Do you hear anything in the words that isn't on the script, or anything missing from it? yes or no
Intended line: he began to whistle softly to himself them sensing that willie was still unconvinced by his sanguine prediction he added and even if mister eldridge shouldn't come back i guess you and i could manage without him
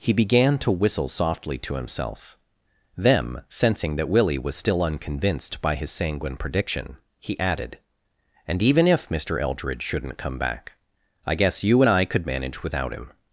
no